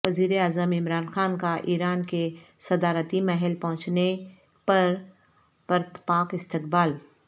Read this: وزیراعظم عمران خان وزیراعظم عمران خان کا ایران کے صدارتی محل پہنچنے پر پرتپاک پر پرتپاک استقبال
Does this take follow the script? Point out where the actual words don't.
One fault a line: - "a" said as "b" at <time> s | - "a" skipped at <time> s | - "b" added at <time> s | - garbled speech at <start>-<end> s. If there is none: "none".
- "وزیراعظم عمران خان" skipped at 1.4 s
- "پر پرتپاک" skipped at 6.3 s